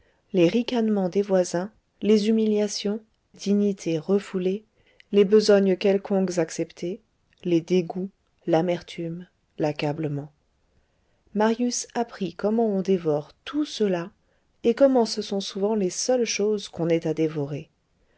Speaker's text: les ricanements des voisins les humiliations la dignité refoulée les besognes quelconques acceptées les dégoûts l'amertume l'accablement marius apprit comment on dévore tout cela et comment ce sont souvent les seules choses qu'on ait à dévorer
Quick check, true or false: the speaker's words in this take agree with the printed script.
false